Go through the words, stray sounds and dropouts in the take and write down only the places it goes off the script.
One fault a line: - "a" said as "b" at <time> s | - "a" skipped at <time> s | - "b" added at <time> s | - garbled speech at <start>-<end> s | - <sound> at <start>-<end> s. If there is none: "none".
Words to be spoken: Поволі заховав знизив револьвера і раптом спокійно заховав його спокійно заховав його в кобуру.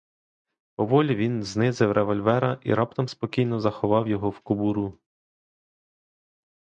- "заховав" said as "він" at 1.1 s
- "спокійно заховав його" skipped at 4.3 s